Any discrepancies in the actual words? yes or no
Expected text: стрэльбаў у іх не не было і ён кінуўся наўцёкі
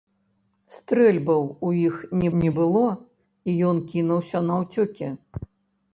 no